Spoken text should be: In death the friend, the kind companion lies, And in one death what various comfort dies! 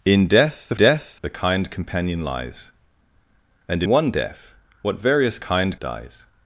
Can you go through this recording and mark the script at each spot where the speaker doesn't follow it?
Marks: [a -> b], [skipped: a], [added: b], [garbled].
In death the [friend, -> death] the kind companion lies, And [skipped: in] one death what various [comfort -> kind] dies!